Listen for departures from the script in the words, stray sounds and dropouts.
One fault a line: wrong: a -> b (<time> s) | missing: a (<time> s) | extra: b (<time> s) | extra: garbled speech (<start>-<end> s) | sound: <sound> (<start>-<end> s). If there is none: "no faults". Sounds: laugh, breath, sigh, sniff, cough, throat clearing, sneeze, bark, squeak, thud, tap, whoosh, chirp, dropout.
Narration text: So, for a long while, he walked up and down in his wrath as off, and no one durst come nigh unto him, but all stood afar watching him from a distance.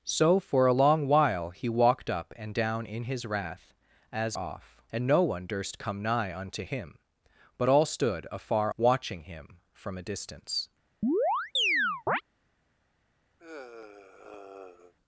sound: chirp (11.0-12.2 s)
sound: sigh (13.4-14.9 s)